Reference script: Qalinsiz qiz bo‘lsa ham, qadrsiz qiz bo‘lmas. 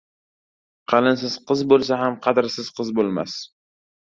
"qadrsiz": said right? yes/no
yes